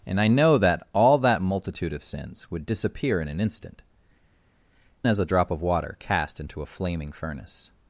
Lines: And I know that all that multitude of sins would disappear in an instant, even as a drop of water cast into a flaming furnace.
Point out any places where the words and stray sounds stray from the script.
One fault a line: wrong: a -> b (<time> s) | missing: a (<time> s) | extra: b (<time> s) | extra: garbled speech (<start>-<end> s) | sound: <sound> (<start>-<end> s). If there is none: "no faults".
missing: even (3.8 s)